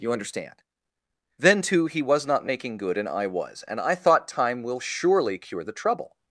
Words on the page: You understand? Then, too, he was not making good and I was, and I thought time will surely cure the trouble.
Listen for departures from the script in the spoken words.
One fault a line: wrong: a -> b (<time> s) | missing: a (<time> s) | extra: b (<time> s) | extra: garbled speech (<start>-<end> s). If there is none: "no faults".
no faults